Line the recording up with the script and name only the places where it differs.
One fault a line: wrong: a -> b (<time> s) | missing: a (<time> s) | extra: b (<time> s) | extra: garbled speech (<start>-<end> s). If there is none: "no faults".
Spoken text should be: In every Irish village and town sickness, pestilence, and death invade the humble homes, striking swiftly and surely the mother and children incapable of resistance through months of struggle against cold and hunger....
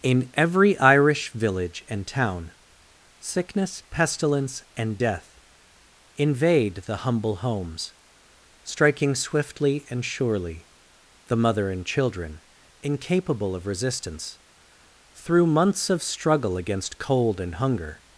no faults